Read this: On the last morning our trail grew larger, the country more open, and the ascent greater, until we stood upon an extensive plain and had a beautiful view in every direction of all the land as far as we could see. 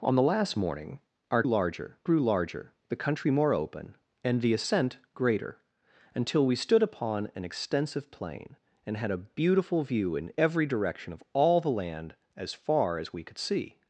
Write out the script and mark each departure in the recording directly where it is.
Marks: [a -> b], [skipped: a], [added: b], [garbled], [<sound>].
On the last morning our [trail -> larger] grew larger, the country more open, and the ascent greater, until we stood upon an extensive plain and had a beautiful view in every direction of all the land as far as we could see.